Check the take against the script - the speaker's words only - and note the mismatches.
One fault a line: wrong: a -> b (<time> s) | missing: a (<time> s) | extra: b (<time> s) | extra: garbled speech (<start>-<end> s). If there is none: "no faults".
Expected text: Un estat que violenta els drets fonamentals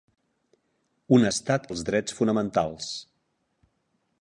missing: que violenta (1.7 s)